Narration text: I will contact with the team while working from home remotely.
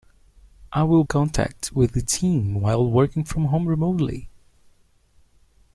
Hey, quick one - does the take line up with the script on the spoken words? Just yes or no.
yes